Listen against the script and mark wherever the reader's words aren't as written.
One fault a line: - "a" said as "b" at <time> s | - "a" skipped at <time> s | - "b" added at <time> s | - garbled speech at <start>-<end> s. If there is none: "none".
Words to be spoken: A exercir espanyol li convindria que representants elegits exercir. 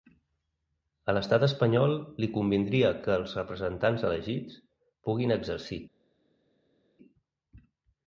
- "exercir" said as "l'estat" at 1.2 s
- "els" added at 3.2 s
- "puguin" added at 5.1 s